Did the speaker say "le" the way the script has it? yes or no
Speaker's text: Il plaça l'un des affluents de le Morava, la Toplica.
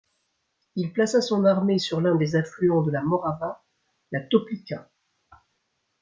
no